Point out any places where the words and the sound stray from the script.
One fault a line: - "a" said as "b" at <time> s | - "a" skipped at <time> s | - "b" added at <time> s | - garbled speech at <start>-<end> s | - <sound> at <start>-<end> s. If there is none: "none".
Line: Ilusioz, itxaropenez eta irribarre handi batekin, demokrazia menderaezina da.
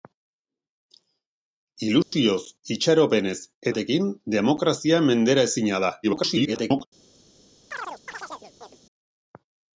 - dropout at 2.0-2.1 s
- "eta irribarre handi" skipped at 3.4 s
- garbled speech at 6.0-6.9 s
- chirp at 7.7-8.8 s